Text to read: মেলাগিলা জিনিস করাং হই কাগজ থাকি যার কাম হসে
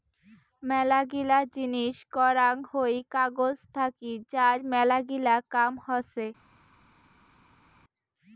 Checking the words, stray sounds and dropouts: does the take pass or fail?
fail